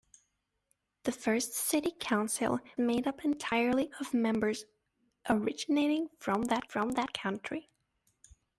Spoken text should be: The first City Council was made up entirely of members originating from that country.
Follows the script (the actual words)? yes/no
no